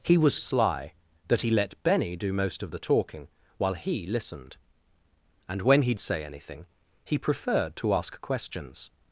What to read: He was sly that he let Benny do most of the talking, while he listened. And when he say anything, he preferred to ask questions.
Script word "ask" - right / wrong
right